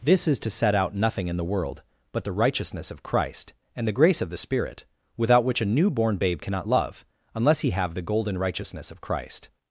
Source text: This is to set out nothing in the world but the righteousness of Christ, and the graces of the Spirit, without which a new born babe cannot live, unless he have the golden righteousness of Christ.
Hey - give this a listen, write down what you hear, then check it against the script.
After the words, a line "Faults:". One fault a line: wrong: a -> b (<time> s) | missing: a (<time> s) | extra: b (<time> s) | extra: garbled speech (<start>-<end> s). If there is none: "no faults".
This is to set out nothing in the world but the righteousness of Christ, and the grace of the Spirit, without which a new born babe cannot love, unless he have the golden righteousness of Christ.
Faults:
wrong: graces -> grace (3.9 s)
wrong: live -> love (6.7 s)